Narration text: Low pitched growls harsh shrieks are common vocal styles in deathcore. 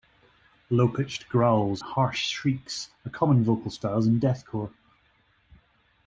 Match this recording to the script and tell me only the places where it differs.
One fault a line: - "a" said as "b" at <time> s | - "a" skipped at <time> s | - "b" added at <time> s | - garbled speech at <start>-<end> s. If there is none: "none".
none